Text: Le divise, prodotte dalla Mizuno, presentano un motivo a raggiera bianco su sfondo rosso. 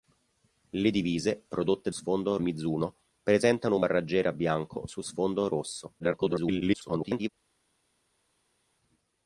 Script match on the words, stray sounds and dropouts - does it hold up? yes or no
no